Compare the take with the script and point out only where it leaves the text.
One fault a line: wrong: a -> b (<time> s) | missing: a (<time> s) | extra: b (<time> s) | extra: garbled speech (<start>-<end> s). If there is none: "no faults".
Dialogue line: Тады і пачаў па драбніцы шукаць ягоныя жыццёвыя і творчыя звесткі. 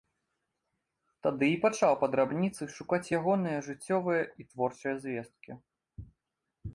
no faults